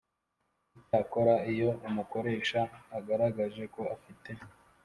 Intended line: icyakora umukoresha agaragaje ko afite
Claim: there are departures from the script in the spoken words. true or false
true